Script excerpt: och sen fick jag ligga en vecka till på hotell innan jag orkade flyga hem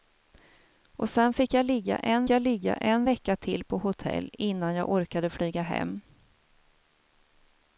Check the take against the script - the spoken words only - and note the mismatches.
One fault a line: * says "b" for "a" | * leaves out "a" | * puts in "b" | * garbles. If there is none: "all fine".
* puts in "jag ligga en"